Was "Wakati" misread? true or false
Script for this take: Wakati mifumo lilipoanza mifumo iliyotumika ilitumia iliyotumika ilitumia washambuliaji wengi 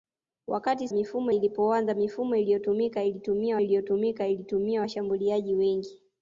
false